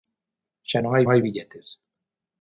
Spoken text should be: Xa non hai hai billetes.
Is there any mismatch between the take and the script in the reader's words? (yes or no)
no